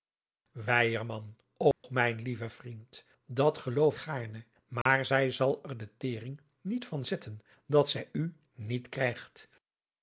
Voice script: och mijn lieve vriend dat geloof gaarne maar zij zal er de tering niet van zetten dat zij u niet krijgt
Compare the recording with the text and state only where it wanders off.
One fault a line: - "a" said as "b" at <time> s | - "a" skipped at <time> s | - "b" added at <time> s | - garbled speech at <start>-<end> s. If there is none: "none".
none